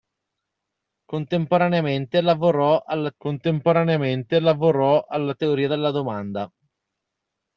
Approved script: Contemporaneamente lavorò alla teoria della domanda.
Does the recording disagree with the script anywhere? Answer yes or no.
yes